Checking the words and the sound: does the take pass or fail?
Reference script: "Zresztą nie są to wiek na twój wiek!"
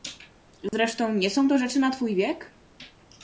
fail